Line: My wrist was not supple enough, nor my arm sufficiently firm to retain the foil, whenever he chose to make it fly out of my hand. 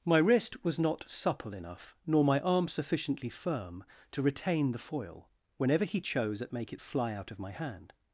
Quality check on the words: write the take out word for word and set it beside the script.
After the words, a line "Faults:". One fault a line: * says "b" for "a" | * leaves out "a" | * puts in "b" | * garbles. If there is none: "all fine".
My wrist was not supple enough, nor my arm sufficiently firm to retain the foil, whenever he chose at make it fly out of my hand.
Faults:
* says "at" for "to"